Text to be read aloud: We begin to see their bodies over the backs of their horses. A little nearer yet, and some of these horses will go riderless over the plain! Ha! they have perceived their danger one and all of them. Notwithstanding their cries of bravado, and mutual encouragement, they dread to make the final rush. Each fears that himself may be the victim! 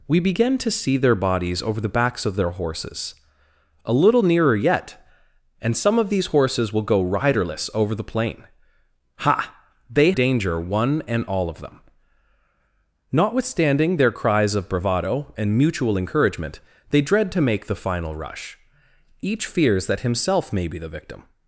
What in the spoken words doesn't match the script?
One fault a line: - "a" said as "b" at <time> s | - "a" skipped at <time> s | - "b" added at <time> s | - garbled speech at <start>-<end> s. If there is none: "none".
- "have perceived their" skipped at 10.1 s